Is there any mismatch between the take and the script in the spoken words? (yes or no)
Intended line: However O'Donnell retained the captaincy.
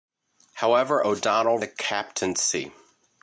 yes